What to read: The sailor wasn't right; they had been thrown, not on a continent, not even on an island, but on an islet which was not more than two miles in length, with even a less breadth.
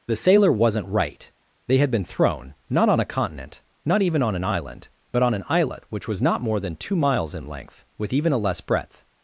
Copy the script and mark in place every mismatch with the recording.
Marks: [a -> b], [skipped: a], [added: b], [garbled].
The sailor wasn't right; they had been thrown, not on a continent, not even on an island, but on an islet which was not more than two miles in length, with even a less breadth.